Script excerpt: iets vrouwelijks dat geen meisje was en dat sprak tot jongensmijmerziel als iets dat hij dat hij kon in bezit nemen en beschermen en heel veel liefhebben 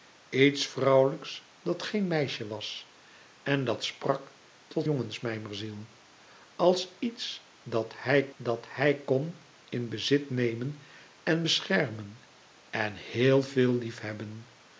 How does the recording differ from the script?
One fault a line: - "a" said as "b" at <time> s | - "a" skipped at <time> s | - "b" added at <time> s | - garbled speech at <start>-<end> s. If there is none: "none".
none